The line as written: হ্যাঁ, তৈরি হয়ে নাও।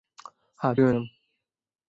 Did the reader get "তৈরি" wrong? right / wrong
wrong